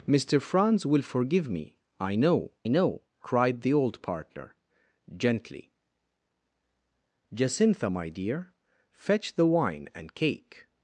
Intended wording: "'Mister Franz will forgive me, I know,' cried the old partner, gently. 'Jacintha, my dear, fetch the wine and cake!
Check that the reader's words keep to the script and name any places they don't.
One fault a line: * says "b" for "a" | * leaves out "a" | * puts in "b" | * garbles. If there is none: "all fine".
* puts in "know"